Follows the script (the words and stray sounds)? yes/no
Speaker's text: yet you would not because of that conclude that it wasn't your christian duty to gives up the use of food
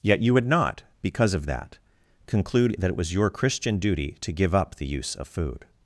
no